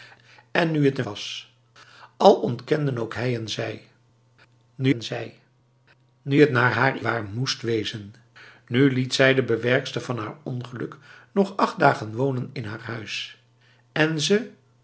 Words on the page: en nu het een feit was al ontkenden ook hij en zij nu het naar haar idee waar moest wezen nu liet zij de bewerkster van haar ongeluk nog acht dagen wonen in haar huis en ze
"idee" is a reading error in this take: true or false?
true